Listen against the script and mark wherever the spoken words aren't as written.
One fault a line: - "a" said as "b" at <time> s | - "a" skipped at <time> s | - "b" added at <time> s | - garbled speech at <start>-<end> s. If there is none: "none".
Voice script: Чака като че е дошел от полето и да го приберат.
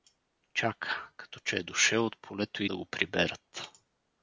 none